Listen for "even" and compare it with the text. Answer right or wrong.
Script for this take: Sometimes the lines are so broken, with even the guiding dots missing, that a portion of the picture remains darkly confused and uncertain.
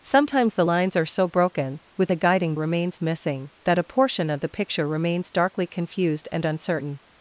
wrong